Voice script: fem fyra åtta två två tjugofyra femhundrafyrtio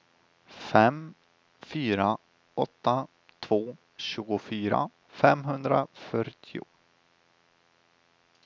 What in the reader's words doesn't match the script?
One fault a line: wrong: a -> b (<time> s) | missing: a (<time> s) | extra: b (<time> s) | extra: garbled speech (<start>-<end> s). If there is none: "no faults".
missing: två (3.8 s)